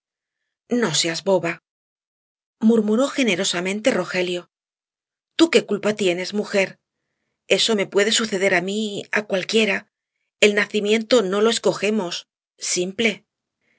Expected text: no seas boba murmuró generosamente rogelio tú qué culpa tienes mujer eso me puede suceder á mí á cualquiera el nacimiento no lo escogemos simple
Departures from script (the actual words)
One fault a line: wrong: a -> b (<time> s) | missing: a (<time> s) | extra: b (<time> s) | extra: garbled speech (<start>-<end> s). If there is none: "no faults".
no faults